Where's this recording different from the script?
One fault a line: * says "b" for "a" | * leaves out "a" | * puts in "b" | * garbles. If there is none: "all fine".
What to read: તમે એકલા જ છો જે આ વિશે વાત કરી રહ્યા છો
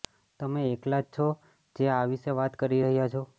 all fine